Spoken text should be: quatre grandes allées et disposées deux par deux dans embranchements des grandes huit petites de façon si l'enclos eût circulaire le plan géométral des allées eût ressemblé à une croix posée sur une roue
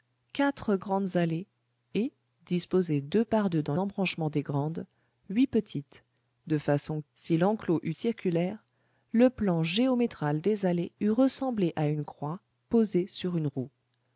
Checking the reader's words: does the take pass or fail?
pass